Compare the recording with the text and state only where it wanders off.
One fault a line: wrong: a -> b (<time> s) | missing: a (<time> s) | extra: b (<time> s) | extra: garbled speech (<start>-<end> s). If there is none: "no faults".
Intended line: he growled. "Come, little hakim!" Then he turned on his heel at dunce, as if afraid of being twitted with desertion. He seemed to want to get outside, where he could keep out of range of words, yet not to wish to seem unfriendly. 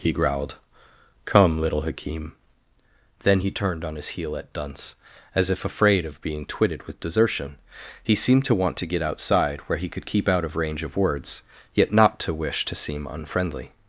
no faults